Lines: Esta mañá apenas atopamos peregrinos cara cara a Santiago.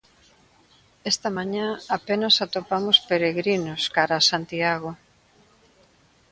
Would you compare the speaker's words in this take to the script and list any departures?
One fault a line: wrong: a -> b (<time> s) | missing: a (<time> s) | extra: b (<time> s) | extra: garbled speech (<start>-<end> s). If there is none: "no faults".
missing: cara (4.1 s)